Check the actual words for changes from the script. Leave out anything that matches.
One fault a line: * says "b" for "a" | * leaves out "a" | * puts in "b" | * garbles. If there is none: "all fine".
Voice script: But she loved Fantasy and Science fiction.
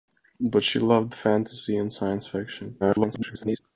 * garbles